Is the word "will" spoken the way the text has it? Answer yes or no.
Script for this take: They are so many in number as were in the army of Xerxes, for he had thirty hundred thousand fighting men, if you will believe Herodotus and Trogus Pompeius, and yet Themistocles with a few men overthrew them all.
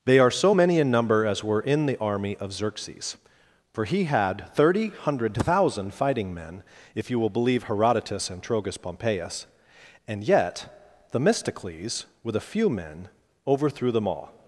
yes